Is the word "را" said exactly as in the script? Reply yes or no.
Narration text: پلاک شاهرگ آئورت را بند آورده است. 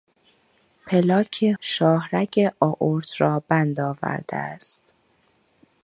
yes